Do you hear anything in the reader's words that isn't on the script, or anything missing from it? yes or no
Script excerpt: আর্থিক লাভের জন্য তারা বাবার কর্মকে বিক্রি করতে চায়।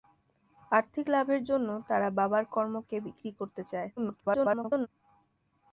yes